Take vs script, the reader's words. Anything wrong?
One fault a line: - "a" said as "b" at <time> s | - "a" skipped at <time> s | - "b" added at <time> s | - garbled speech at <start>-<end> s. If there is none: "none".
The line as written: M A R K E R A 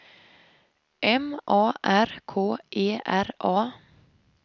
none